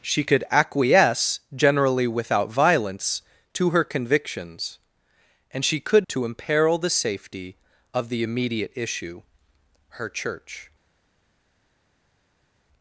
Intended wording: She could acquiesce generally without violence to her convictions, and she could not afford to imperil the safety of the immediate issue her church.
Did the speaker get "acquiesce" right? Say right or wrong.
right